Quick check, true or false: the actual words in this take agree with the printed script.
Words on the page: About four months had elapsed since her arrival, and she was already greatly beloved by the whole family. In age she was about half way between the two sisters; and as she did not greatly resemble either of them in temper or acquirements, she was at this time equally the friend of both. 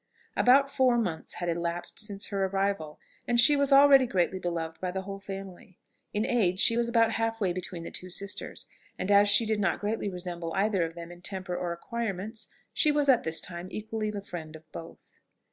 true